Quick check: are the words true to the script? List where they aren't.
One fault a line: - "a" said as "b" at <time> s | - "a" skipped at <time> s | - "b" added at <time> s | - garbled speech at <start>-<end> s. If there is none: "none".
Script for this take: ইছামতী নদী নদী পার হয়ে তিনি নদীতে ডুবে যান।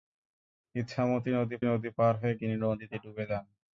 none